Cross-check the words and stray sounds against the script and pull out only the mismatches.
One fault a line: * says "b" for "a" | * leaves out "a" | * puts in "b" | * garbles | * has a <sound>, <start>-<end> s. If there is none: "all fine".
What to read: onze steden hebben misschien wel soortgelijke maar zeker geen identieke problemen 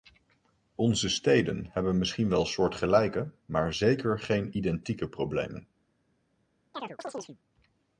* has a chirp, 6.7-7.4 s